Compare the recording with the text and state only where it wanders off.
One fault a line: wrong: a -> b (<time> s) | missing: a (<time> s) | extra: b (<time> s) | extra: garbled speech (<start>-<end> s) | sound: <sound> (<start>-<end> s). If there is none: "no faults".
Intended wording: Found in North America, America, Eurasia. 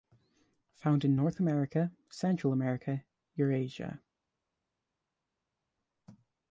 extra: Central (2.1 s)